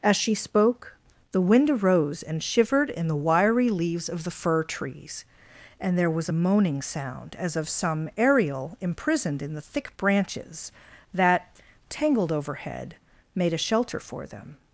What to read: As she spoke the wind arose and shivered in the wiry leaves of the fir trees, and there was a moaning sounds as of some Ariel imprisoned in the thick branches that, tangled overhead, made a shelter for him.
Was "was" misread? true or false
false